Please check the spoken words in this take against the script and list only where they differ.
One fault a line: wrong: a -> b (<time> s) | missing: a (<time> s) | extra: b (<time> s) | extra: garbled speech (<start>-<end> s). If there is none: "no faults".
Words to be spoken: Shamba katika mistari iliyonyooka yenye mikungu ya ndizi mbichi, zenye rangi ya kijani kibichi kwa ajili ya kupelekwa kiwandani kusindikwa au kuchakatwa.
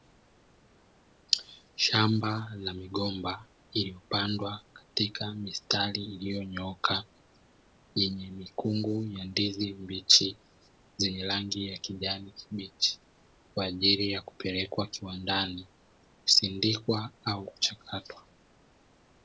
extra: la migomba iliyopandwa (2.5 s)